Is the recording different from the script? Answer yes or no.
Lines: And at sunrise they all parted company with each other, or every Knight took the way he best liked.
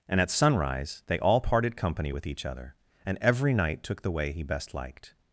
yes